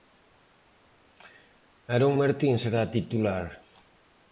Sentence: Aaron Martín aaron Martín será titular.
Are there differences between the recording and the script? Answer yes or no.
yes